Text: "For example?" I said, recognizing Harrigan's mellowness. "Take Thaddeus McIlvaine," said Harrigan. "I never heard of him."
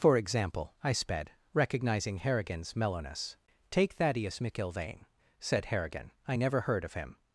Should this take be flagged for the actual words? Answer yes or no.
yes